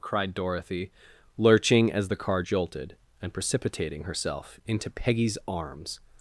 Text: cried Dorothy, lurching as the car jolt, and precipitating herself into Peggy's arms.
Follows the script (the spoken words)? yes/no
no